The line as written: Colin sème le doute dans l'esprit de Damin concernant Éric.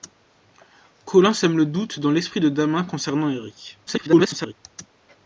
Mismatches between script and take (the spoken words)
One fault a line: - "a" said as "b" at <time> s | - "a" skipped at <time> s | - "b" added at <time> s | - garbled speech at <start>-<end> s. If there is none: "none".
- garbled speech at 3.9-4.5 s